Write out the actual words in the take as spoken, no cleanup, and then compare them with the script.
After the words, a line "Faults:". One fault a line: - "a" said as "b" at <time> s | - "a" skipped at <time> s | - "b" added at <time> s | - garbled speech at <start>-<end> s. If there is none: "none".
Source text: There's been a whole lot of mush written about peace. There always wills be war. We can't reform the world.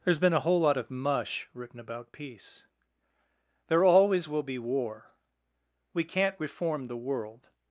There's been a whole lot of mush written about peace. There always will be war. We can't reform the world.
Faults:
- "wills" said as "will" at 4.3 s